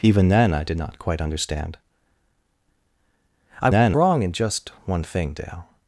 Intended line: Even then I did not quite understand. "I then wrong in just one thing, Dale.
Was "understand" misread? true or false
false